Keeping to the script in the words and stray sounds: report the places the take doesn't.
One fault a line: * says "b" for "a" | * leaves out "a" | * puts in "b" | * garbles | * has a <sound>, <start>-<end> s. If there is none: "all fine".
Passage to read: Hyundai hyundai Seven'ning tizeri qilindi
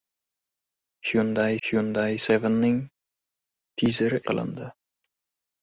all fine